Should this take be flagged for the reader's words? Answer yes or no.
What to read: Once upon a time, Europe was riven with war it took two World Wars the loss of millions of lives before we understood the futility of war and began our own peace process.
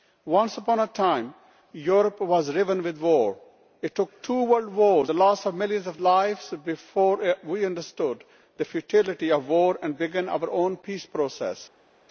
no